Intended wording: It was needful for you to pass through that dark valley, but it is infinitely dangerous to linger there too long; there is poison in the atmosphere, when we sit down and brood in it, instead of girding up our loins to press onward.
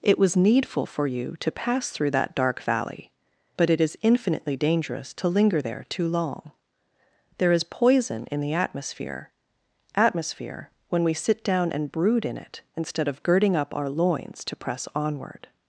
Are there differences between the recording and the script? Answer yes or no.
yes